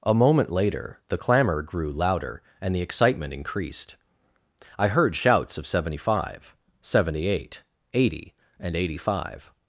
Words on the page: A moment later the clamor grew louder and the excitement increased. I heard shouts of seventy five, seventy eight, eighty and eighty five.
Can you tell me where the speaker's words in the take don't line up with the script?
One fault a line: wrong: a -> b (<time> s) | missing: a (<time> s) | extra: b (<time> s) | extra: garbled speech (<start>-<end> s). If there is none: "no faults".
no faults